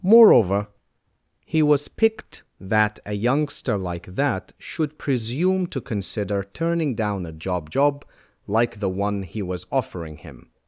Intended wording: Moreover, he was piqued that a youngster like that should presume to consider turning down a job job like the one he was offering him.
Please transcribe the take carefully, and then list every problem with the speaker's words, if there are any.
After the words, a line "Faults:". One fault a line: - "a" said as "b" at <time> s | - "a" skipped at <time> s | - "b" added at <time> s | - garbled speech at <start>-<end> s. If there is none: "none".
Moreover, he was piqued that a youngster like that should presume to consider turning down a job job like the one he was offering him.
Faults:
none